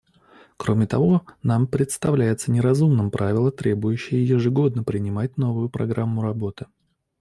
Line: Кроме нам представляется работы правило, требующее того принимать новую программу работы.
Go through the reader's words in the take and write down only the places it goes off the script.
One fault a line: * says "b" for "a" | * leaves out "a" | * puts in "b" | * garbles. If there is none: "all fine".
* puts in "того"
* says "неразумным" for "работы"
* says "ежегодно" for "того"